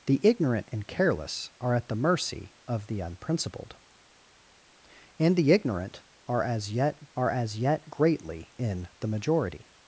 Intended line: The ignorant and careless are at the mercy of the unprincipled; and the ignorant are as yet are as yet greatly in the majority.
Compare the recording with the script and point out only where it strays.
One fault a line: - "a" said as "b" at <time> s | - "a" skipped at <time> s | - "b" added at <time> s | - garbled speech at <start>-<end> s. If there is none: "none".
none